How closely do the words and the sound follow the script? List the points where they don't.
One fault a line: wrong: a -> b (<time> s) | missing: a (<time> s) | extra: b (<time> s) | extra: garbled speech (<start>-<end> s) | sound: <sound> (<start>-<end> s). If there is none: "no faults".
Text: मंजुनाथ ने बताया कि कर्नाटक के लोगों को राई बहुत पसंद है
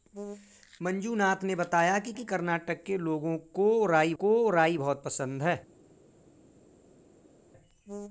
extra: कि (2.1 s)
extra: को राई (4.2 s)